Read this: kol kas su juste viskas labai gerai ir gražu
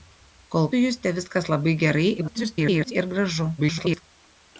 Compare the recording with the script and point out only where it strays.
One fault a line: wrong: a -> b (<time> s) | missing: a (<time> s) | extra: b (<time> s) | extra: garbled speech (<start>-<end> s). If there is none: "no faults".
missing: kas (0.7 s)
extra: garbled speech (2.2-2.9 s)
extra: garbled speech (3.6-4.0 s)